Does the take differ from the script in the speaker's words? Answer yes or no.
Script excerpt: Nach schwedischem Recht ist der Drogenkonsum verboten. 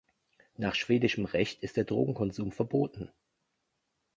no